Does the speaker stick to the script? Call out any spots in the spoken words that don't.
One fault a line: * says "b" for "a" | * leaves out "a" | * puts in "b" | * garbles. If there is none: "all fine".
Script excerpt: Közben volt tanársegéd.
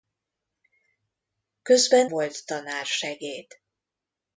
all fine